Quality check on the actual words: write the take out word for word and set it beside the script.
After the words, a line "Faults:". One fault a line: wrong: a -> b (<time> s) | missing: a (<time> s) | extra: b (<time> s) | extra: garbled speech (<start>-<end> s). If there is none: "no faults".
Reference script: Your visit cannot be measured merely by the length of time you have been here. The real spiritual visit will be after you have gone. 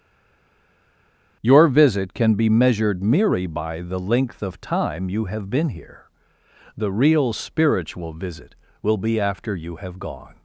Your visit can be measured merely by the length of time you have been here. The real spiritual visit will be after you have gone.
Faults:
wrong: cannot -> can (2.1 s)